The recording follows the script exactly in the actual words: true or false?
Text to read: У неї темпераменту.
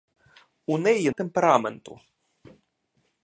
true